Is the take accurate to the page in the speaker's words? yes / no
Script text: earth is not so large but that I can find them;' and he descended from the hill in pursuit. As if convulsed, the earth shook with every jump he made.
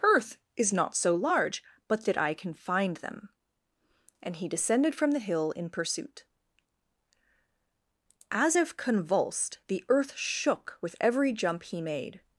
yes